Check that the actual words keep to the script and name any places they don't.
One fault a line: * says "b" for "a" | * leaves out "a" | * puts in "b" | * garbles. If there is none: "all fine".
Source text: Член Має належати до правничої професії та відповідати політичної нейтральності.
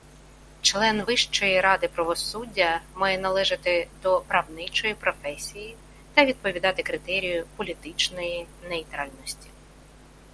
* puts in "Вищої ради правосуддя"
* puts in "критерію"